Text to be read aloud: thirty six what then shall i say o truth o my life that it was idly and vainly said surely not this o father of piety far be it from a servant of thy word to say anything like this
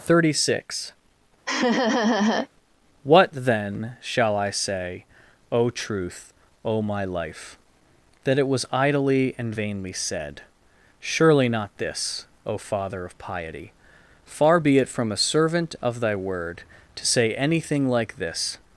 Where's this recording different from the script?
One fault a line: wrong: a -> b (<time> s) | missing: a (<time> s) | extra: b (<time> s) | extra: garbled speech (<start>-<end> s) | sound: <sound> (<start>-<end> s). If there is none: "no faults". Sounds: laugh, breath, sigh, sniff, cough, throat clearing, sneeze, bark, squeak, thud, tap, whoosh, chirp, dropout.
sound: laugh (1.5-2.5 s)